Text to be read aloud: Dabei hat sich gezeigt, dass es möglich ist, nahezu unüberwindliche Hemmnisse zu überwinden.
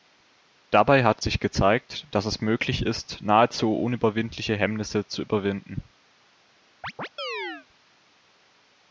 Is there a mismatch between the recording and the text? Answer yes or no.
no